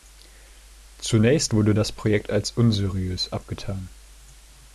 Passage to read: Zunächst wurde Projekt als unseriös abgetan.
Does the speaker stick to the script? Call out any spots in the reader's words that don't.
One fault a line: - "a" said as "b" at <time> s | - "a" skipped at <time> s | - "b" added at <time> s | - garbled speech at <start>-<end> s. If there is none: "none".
- "das" added at 1.7 s